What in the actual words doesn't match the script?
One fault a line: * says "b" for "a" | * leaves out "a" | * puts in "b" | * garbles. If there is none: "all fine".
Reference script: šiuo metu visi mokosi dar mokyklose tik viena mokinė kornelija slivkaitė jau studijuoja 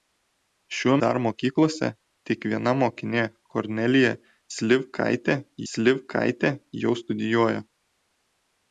* leaves out "metu visi mokosi"
* puts in "slivkaitė"